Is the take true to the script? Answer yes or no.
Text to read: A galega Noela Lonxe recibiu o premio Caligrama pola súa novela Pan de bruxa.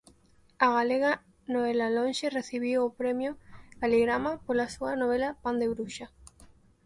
yes